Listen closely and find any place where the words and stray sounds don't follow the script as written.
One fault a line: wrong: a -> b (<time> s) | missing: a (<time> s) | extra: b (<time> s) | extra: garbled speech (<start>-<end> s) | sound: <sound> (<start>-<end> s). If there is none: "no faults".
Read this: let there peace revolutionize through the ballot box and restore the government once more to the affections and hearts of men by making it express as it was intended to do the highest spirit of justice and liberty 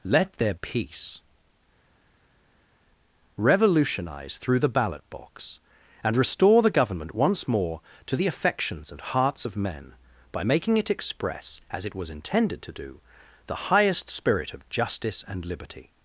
no faults